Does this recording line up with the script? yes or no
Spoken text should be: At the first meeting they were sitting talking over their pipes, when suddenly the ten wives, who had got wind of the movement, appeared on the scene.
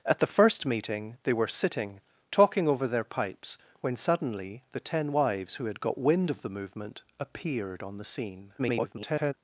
no